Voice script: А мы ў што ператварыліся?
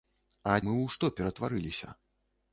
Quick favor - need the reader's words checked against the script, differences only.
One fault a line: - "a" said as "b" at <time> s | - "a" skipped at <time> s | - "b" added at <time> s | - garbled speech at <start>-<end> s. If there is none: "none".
none